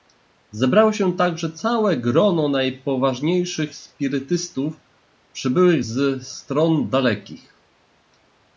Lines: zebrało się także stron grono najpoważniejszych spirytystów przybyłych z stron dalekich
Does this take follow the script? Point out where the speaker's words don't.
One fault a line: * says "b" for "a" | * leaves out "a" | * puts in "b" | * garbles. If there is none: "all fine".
* says "całe" for "stron"